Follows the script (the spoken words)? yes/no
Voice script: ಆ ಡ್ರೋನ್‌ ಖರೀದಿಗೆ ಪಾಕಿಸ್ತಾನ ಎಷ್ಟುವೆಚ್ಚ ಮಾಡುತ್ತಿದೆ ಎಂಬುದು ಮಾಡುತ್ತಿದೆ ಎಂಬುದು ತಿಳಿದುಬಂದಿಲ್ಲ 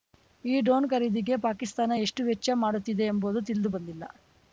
no